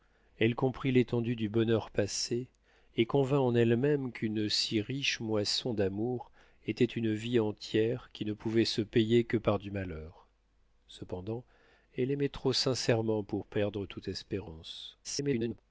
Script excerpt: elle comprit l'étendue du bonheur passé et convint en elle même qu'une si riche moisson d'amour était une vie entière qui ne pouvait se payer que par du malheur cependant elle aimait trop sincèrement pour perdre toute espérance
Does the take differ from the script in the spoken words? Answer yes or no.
yes